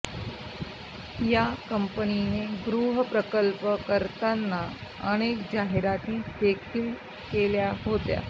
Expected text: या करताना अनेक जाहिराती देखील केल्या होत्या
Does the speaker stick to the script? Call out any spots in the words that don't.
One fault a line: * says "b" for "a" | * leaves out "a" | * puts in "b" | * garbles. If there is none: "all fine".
* puts in "कंपनीने गृहप्रकल्प"